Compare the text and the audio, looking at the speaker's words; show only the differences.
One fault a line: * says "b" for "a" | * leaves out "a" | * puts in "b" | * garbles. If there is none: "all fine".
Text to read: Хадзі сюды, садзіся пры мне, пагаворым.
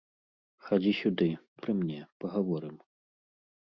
* leaves out "садзіся"